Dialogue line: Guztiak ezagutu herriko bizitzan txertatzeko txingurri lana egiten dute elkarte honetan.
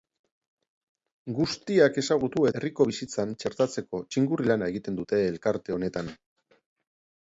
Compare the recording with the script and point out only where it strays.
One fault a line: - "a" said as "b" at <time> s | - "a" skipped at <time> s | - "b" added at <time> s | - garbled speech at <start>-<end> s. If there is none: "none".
none